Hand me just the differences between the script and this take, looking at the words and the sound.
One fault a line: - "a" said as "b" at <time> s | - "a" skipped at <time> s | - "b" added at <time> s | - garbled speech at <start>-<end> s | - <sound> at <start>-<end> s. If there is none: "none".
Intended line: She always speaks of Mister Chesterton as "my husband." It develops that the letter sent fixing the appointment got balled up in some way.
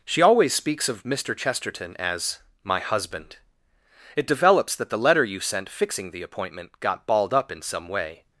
- "you" added at 5.2 s